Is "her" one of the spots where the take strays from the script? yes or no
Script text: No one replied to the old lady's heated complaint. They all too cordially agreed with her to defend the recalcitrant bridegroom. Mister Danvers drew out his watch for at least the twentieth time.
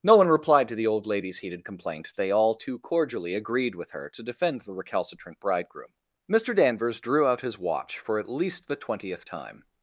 no